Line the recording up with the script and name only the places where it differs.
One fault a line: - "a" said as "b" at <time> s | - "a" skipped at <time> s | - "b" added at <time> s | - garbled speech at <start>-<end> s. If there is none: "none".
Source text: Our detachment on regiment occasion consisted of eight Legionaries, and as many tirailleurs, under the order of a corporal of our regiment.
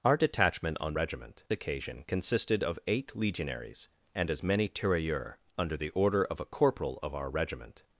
none